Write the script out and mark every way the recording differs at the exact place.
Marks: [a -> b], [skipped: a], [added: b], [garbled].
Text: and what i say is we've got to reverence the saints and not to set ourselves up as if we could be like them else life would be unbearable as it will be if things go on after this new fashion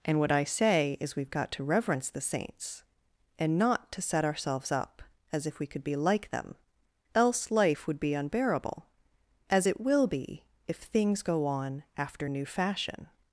and what i say is we've got to reverence the saints and not to set ourselves up as if we could be like them else life would be unbearable as it will be if things go on after [skipped: this] new fashion